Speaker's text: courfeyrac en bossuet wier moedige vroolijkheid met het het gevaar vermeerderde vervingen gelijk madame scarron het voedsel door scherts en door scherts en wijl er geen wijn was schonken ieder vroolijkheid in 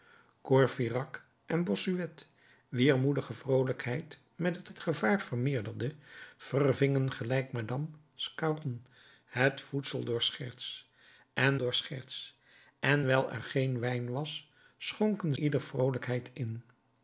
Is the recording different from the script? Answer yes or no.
no